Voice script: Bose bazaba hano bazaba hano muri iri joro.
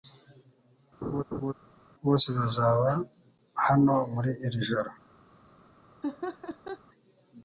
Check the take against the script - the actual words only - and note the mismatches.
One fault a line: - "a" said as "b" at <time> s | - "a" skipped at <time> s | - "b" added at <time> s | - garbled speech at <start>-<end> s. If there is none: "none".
- "bazaba hano" skipped at 3.9 s